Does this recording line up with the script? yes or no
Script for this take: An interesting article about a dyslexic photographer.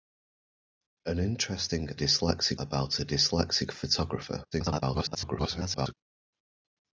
no